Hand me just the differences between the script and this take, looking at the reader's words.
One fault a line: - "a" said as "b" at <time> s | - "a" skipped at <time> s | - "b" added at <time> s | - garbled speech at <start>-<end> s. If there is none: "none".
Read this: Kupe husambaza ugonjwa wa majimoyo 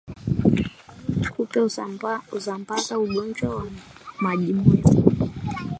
none